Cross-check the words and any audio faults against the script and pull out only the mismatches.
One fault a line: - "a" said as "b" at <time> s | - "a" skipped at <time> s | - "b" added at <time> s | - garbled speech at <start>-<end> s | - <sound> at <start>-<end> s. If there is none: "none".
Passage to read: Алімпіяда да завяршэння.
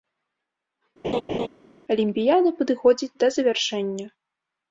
- laugh at 1.0-1.5 s
- "падыходзіць" added at 2.6 s